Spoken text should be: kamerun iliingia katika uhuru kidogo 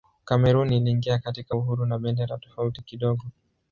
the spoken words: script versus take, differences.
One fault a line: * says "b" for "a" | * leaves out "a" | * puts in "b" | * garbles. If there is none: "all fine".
* puts in "na bendera tofauti"